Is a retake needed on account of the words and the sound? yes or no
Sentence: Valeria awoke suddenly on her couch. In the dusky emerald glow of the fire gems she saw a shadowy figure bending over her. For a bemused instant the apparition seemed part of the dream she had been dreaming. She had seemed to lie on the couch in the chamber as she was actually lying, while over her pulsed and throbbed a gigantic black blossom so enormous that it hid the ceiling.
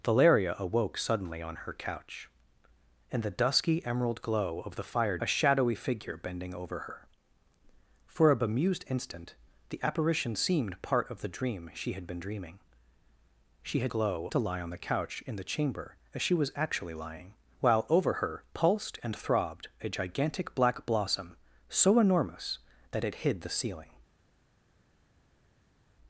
yes